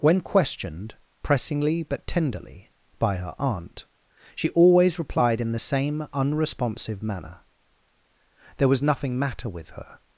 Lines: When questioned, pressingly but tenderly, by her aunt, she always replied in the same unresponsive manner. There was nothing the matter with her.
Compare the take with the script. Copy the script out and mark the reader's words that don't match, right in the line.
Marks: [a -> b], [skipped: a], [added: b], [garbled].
When questioned, pressingly but tenderly, by her aunt, she always replied in the same unresponsive manner. There was nothing [skipped: the] matter with her.